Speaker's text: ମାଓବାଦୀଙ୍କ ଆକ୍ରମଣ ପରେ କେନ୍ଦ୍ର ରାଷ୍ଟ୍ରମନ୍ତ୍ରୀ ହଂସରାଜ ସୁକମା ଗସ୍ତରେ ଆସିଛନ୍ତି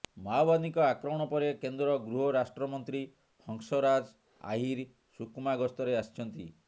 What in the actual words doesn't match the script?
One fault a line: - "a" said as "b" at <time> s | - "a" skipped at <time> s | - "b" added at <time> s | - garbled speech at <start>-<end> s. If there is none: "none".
- "ଗୃହ" added at 2.0 s
- "ଆହିର" added at 4.5 s